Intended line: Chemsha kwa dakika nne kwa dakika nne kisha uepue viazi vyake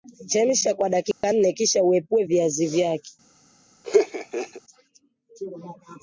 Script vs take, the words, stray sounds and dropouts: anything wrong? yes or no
yes